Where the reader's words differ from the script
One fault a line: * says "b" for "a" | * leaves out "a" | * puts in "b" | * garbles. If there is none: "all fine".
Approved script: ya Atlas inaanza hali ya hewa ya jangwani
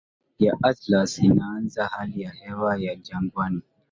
all fine